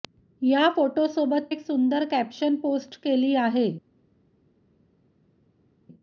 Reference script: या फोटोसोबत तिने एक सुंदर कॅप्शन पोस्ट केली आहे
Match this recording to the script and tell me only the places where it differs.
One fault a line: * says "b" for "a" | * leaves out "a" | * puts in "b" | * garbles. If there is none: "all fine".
* leaves out "तिने"